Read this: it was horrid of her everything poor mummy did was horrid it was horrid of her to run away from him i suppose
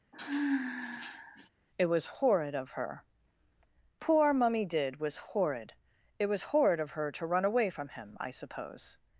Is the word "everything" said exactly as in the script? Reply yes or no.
no